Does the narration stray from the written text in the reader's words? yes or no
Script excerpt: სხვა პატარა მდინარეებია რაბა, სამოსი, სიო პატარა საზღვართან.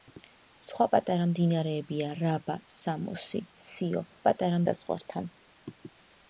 no